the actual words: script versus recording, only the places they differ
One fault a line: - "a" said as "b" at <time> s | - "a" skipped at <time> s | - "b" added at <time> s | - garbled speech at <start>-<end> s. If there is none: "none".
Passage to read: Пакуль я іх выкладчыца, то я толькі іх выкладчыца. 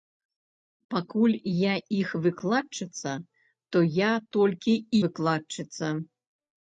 - "іх" skipped at 4.7 s